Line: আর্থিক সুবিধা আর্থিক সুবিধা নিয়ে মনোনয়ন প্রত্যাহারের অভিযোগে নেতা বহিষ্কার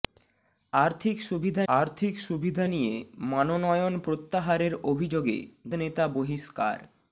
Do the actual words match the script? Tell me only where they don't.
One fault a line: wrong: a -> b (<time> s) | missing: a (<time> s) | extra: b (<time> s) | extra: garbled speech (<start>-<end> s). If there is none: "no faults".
no faults